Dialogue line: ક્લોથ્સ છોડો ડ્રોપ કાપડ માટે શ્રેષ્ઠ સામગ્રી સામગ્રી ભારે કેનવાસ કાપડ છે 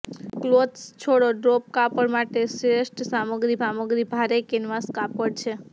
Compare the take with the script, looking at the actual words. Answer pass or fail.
pass